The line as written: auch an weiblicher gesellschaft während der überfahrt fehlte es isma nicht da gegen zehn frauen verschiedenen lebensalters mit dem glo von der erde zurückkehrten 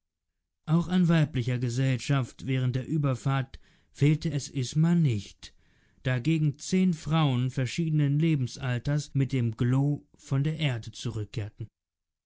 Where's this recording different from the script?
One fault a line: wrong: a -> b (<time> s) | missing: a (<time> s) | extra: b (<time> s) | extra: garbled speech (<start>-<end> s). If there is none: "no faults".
no faults